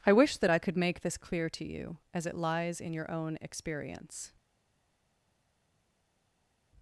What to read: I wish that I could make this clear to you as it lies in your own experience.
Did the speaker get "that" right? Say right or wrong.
right